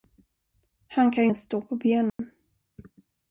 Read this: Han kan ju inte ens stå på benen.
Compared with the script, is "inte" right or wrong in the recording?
wrong